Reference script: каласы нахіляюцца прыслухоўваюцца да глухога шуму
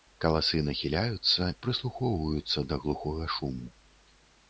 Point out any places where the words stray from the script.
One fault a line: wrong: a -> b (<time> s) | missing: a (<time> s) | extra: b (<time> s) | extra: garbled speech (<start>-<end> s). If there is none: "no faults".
no faults